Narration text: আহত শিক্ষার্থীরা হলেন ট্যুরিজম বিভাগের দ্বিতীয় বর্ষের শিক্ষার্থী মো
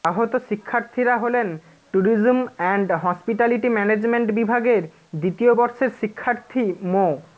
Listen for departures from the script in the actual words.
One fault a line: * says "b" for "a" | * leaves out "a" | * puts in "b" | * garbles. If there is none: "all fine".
* puts in "অ্যান্ড হসপিটালিটি ম্যানেজমেন্ট"